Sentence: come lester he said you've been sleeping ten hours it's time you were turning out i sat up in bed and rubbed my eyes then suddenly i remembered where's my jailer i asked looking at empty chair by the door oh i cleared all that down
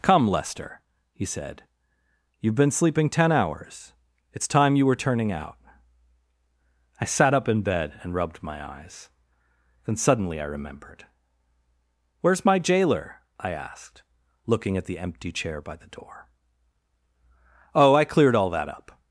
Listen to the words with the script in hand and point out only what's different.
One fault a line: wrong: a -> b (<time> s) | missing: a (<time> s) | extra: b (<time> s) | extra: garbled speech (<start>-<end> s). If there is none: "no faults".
extra: the (14.8 s)
wrong: down -> up (18.7 s)